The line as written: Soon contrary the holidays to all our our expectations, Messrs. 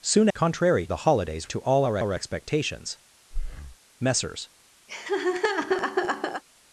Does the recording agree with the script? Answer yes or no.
yes